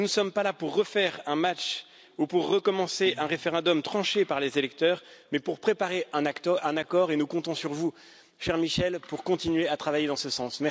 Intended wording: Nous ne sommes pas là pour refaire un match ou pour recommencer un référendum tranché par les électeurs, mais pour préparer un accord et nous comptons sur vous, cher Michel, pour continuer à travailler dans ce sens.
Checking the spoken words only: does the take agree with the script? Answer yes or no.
yes